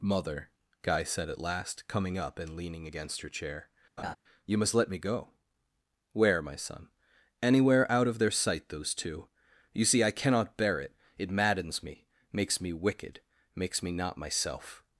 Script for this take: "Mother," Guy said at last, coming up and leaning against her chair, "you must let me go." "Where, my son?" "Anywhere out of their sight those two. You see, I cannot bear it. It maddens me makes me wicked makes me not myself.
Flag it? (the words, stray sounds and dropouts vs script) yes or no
yes